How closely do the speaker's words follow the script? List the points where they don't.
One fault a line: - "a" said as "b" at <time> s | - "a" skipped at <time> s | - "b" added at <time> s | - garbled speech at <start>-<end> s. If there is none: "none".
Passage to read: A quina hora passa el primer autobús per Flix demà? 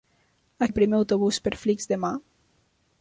- "quina hora passa" skipped at 0.7 s